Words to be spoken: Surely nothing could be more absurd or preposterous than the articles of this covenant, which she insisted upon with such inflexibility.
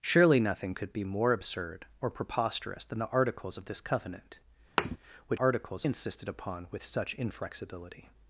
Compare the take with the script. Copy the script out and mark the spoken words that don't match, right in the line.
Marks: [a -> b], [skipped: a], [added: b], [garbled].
Surely nothing could be more absurd or preposterous than the articles of this covenant, which [she -> articles] insisted upon with such inflexibility.